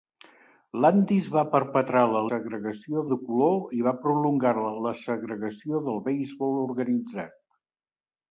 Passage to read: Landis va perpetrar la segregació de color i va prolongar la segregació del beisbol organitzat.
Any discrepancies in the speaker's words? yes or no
no